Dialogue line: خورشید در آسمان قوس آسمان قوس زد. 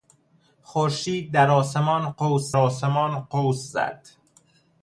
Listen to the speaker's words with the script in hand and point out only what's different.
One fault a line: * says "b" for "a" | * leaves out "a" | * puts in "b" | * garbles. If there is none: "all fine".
all fine